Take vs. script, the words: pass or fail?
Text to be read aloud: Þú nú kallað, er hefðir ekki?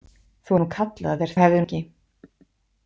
pass